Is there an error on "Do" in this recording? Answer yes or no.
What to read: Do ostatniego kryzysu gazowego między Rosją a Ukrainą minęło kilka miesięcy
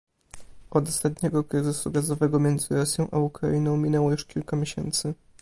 yes